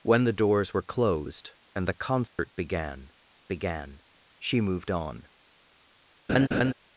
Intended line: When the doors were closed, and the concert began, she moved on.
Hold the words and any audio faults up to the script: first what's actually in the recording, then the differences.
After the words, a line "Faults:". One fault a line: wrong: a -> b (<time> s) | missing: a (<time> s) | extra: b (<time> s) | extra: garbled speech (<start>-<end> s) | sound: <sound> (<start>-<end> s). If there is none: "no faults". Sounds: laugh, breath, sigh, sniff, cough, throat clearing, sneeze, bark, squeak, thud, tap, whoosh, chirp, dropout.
When the doors were closed, and the concert began began, she moved on.
Faults:
sound: dropout (2.3-2.4 s)
extra: began (3.5 s)
sound: laugh (6.3-6.7 s)